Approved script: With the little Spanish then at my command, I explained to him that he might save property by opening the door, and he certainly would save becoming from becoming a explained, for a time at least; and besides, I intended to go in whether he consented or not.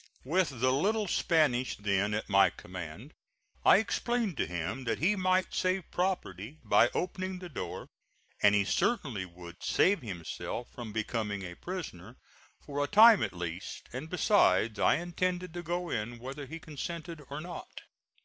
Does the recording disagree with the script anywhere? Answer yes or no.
yes